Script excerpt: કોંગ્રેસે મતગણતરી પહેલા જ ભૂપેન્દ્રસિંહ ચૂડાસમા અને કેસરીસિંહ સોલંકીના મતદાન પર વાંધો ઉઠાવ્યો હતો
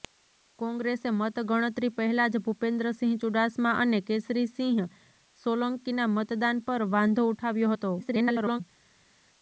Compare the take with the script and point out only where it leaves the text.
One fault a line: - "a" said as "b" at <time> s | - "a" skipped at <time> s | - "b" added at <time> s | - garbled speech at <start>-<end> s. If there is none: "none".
- garbled speech at 8.0-8.6 s